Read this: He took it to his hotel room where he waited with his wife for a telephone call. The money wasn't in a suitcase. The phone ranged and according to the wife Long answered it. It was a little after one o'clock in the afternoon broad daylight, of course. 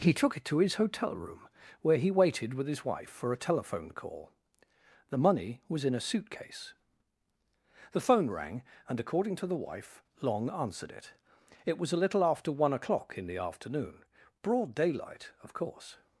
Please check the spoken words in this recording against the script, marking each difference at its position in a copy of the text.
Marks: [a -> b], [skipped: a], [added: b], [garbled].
He took it to his hotel room where he waited with his wife for a telephone call. The money [wasn't -> was] in a suitcase. The phone [ranged -> rang] and according to the wife Long answered it. It was a little after one o'clock in the afternoon broad daylight, of course.